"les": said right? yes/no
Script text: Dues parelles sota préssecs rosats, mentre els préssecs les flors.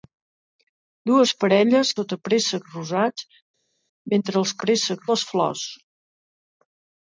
yes